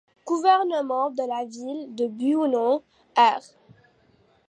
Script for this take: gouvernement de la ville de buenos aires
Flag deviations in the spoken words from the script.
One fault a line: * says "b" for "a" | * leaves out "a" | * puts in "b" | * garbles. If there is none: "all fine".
all fine